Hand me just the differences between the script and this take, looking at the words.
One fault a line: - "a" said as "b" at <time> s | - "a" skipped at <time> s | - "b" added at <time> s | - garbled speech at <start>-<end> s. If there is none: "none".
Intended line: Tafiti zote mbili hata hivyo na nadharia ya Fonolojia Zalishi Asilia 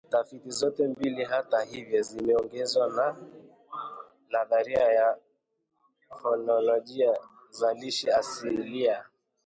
- "zimeongozwa" added at 2.0 s